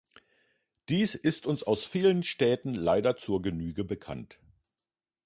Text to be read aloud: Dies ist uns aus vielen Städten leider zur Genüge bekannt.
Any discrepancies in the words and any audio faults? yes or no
no